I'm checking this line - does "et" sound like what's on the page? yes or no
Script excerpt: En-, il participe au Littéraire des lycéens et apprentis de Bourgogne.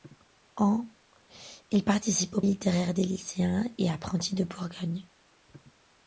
yes